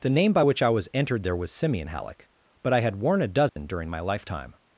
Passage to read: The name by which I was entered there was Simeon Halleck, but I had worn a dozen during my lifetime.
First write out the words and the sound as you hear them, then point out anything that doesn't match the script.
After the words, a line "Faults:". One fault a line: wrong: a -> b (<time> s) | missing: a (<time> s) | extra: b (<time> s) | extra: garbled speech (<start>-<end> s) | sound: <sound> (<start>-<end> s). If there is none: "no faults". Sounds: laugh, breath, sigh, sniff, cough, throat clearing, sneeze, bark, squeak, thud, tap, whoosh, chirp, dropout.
The name by which I was entered there was Simeon Halleck, but I had worn a dozen during my lifetime.
Faults:
sound: dropout (3.5-3.6 s)